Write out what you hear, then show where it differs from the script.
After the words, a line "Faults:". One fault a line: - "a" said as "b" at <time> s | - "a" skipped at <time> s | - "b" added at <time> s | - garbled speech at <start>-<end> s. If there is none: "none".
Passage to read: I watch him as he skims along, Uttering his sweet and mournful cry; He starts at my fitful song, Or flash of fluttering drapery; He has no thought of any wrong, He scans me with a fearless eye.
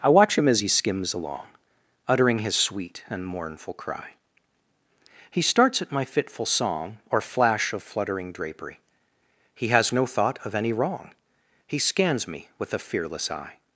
I watch him as he skims along, Uttering his sweet and mournful cry; He starts at my fitful song, Or flash of fluttering drapery; He has no thought of any wrong, He scans me with a fearless eye.
Faults:
none